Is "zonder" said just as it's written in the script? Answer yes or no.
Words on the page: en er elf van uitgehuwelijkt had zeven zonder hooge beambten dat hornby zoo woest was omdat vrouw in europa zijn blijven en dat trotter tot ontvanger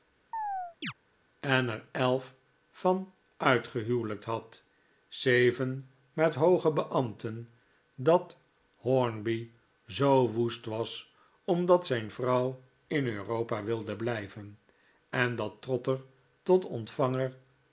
no